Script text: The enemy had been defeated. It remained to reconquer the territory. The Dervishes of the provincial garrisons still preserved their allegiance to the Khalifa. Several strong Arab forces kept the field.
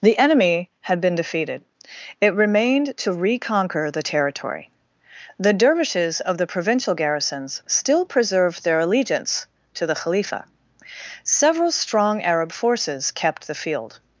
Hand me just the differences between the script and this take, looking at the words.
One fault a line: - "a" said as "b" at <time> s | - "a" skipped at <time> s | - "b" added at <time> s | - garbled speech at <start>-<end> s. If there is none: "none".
none